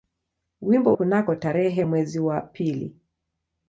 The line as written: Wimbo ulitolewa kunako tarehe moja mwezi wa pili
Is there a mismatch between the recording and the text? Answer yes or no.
yes